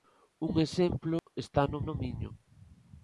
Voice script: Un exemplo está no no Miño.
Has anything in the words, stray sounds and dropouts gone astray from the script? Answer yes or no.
yes